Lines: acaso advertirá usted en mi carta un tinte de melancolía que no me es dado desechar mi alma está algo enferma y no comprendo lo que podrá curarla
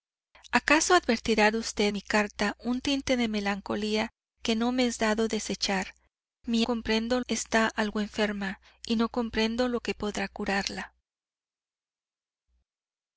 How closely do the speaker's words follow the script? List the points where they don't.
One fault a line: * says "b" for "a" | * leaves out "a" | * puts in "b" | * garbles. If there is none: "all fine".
* leaves out "en"
* says "comprendo" for "alma"